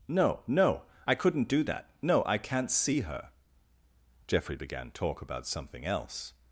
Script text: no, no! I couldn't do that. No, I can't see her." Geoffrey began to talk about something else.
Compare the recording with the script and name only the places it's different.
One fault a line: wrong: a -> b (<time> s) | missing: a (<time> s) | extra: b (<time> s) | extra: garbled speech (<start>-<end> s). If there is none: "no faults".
missing: to (4.9 s)